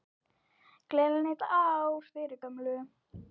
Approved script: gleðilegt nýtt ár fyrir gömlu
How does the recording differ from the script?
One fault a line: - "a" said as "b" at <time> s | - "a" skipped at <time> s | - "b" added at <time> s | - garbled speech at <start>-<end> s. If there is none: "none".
none